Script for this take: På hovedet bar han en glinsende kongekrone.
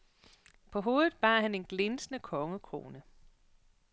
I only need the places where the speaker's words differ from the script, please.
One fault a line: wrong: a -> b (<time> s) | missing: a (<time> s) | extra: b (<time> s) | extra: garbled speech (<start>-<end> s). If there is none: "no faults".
no faults